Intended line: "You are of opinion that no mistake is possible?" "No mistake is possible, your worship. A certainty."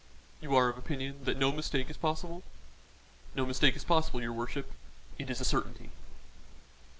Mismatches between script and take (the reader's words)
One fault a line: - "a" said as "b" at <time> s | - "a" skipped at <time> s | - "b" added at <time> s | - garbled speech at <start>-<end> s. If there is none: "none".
- "It is" added at 5.2 s